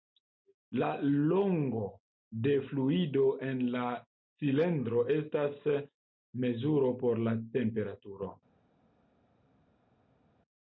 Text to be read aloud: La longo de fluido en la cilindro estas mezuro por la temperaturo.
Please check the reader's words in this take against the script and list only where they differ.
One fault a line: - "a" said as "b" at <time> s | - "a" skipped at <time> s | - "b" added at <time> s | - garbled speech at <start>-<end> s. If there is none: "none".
none